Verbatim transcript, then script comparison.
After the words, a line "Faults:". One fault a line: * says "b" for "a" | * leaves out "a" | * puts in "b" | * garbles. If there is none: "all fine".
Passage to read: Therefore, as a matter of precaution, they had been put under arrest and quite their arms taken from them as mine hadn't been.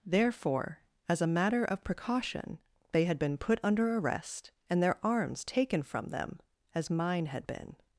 Therefore, as a matter of precaution, they had been put under arrest and their arms taken from them as mine had been.
Faults:
* leaves out "quite"
* says "had" for "hadn't"